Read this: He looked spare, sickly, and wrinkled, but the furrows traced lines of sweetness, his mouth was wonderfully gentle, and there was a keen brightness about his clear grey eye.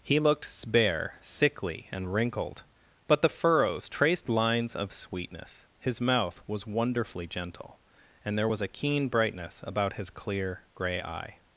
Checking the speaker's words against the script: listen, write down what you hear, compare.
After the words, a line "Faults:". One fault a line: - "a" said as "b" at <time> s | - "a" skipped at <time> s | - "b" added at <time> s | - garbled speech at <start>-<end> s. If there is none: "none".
He looked spare, sickly, and wrinkled, but the furrows traced lines of sweetness, his mouth was wonderfully gentle, and there was a keen brightness about his clear grey eye.
Faults:
none